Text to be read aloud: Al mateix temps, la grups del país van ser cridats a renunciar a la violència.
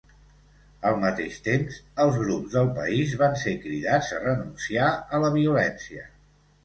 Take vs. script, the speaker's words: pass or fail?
fail